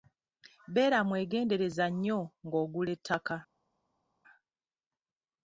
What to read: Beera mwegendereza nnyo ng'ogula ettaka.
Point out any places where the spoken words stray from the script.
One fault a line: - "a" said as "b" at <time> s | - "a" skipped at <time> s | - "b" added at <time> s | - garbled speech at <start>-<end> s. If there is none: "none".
none